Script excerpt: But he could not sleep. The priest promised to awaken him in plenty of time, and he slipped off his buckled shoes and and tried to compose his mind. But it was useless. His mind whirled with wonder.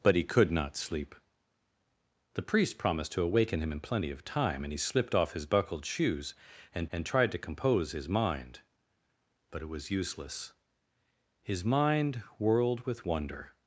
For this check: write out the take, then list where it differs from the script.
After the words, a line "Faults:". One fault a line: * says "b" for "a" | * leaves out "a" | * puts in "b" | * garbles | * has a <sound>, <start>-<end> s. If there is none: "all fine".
But he could not sleep. The priest promised to awaken him in plenty of time, and he slipped off his buckled shoes and and tried to compose his mind. But it was useless. His mind whirled with wonder.
Faults:
all fine